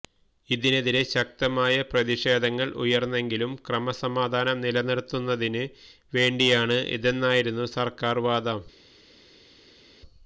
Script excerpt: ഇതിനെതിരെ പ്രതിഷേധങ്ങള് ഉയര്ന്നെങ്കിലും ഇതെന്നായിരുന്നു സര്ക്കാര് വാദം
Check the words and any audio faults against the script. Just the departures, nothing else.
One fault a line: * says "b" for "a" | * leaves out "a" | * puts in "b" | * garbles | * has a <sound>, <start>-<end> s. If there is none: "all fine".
* puts in "ശക്തമായ"
* puts in "ക്രമസമാധാനം നിലനിര്ത്തുന്നതിന് വേണ്ടിയാണ്"